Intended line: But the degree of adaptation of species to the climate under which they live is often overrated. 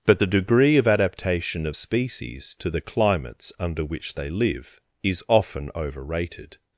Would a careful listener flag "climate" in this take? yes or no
yes